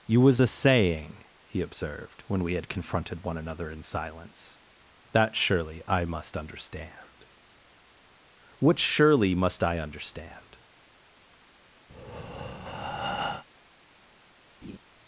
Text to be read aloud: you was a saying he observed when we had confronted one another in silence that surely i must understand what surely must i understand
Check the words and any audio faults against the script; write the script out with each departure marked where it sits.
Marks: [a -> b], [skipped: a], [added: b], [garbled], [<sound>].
you was a saying he observed when we had confronted one another in silence that surely i must understand what surely must i understand [breath] [laugh]